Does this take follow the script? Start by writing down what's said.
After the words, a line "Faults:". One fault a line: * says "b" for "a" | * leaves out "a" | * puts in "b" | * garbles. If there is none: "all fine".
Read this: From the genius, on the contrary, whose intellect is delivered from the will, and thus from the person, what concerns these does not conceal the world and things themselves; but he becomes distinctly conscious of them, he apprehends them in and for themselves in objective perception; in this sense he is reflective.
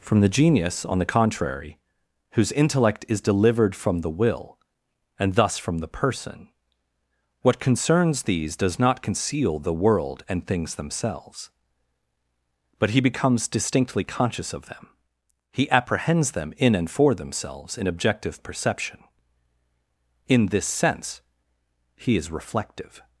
From the genius, on the contrary, whose intellect is delivered from the will, and thus from the person, what concerns these does not conceal the world and things themselves; but he becomes distinctly conscious of them, he apprehends them in and for themselves in objective perception; in this sense he is reflective.
Faults:
all fine